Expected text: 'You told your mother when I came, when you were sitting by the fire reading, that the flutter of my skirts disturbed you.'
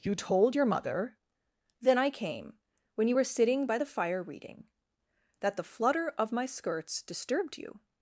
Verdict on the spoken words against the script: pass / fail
fail